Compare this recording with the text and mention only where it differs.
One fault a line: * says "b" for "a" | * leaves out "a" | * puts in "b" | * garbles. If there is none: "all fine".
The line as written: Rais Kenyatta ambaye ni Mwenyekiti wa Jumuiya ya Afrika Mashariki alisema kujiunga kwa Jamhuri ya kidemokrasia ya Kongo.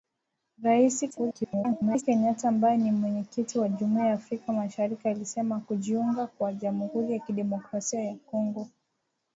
* garbles